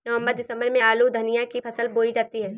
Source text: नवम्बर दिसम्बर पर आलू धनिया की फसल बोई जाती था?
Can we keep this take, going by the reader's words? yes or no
no